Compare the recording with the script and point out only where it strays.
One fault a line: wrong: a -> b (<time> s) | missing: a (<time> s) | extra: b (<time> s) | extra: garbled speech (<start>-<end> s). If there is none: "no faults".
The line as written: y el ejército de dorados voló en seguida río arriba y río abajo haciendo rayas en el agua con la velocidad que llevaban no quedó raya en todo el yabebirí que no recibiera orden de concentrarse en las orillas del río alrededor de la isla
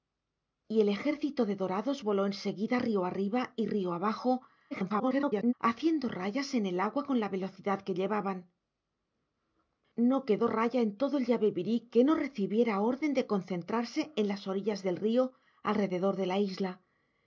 extra: garbled speech (4.7-5.5 s)